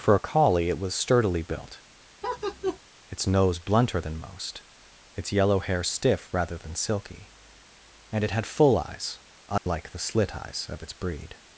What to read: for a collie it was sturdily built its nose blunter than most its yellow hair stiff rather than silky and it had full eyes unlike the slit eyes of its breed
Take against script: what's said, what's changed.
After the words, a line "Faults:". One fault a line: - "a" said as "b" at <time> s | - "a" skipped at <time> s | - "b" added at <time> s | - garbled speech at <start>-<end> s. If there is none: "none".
for a collie it was sturdily built its nose blunter than most its yellow hair stiff rather than silky and it had full eyes unlike the slit eyes of its breed
Faults:
none